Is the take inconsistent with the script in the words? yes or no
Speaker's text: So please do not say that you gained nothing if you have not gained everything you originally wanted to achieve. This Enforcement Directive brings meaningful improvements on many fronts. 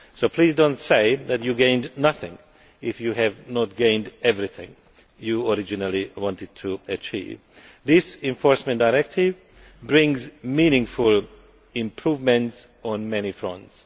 no